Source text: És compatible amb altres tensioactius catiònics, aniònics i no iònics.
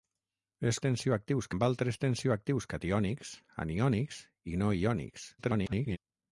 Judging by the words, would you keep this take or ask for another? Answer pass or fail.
fail